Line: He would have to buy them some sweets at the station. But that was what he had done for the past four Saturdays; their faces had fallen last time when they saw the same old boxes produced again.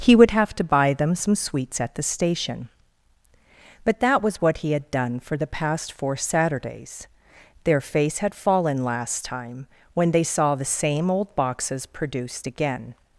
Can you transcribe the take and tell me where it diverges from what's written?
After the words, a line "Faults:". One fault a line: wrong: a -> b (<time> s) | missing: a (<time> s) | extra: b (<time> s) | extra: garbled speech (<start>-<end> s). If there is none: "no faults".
He would have to buy them some sweets at the station. But that was what he had done for the past four Saturdays; their face had fallen last time when they saw the same old boxes produced again.
Faults:
wrong: faces -> face (7.8 s)